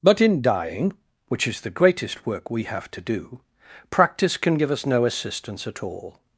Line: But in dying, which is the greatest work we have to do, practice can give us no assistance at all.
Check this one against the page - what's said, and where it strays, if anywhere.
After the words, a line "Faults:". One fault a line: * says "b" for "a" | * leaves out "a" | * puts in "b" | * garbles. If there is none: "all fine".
But in dying, which is the greatest work we have to do, practice can give us no assistance at all.
Faults:
all fine